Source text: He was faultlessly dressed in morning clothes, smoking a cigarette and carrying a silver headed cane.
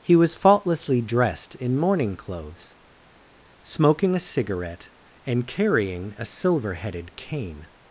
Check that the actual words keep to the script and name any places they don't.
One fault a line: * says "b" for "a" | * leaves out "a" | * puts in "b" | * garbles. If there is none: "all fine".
all fine